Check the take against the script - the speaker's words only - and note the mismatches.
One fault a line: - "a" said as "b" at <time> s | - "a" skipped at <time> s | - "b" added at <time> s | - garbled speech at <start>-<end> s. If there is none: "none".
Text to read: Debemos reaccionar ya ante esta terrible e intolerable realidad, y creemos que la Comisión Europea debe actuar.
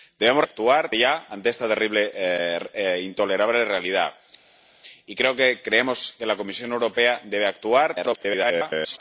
- "reaccionar" said as "actuar" at 0.4 s
- garbled speech at 7.9-9.0 s